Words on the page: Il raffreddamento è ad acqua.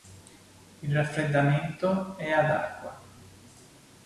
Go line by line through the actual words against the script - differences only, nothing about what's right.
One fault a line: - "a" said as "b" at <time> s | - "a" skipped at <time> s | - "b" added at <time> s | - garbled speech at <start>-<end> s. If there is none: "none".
none